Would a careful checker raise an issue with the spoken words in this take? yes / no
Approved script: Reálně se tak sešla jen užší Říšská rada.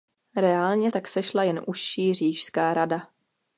yes